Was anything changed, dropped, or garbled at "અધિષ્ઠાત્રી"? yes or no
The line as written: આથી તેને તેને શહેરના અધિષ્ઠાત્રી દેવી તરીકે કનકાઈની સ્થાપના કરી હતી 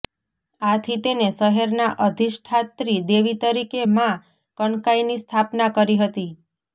no